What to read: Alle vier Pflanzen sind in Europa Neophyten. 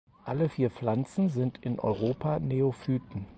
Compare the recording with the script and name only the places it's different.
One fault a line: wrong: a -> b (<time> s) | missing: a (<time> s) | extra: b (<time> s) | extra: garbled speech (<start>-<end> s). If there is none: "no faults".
no faults